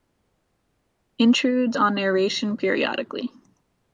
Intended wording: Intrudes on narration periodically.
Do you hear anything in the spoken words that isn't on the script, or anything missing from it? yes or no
no